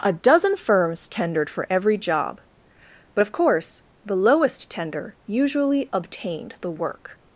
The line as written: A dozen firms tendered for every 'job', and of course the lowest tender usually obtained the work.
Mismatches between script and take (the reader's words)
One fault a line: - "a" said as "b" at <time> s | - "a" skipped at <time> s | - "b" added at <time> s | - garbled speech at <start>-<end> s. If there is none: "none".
- "and" said as "but" at 3.1 s